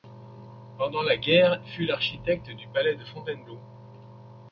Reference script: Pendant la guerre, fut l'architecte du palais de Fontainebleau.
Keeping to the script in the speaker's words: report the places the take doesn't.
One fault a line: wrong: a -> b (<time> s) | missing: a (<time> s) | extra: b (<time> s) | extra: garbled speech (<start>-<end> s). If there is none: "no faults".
no faults